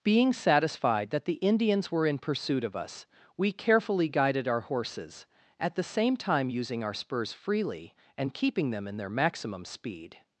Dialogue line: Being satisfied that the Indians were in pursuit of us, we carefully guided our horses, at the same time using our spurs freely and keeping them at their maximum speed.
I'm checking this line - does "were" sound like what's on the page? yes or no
yes